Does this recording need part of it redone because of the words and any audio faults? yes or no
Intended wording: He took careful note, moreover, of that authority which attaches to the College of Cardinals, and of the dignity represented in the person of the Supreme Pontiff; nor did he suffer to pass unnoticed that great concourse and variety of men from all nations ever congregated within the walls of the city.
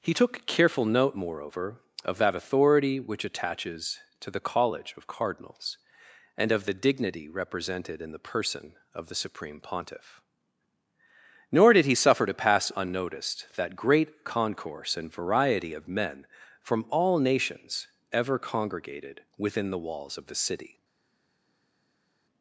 no